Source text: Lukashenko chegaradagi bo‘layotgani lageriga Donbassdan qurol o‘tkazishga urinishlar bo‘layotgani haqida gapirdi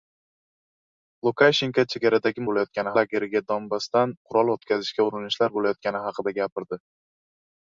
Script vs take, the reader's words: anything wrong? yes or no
no